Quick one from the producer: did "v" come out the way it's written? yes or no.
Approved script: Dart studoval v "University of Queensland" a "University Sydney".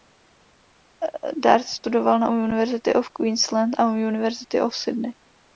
no